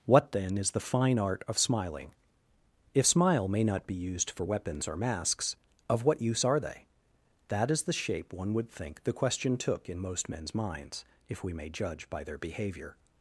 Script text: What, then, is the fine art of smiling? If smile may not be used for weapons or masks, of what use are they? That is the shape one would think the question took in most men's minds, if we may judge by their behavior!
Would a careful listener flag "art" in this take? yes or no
no